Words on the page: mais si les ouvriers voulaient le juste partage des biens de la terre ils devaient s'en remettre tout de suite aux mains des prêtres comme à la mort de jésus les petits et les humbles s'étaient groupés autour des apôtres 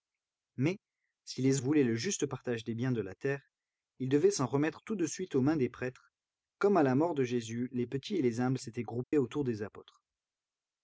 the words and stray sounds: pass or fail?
fail